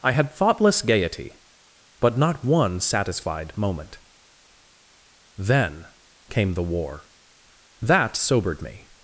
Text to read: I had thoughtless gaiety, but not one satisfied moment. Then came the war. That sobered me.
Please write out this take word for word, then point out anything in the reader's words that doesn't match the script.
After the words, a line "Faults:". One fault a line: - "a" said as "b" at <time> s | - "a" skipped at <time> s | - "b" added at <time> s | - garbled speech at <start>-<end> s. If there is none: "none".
I had thoughtless gaiety, but not one satisfied moment. Then came the war. That sobered me.
Faults:
none